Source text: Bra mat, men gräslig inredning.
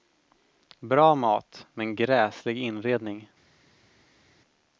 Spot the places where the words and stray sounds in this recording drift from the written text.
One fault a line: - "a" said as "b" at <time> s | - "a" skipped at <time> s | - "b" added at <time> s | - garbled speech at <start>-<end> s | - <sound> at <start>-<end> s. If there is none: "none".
none